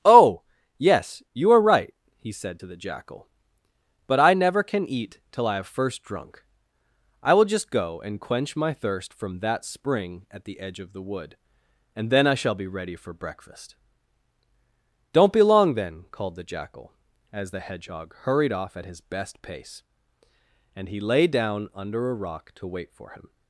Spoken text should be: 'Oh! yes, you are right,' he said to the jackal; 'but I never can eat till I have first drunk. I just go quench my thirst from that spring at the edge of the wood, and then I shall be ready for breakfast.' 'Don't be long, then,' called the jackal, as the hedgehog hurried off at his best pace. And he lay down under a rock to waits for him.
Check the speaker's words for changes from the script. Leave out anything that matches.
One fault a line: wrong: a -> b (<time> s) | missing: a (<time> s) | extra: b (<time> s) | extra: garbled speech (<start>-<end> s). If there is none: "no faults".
extra: will (7.3 s)
extra: and (8.0 s)
wrong: waits -> wait (22.7 s)